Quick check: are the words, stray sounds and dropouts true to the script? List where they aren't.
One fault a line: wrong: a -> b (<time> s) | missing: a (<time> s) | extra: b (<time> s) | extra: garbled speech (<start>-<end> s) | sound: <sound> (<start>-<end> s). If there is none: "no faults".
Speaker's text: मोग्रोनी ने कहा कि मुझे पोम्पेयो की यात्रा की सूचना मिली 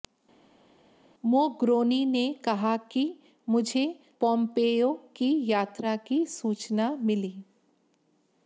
no faults